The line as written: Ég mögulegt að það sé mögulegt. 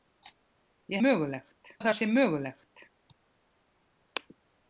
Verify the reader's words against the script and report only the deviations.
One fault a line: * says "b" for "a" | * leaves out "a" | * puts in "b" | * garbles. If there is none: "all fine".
all fine